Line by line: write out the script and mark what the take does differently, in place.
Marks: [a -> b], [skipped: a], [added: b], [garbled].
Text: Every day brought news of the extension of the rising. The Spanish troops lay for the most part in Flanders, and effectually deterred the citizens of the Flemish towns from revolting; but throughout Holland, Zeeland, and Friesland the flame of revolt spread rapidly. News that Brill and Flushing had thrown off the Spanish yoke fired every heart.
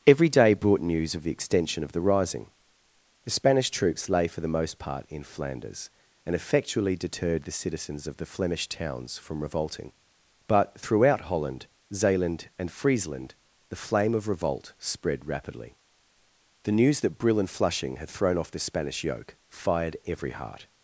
Every day brought news of the extension of the rising. The Spanish troops lay for the most part in Flanders, and effectually deterred the citizens of the Flemish towns from revolting; but throughout Holland, Zeeland, and Friesland the flame of revolt spread rapidly. [added: The] News that Brill and Flushing had thrown off the Spanish yoke fired every heart.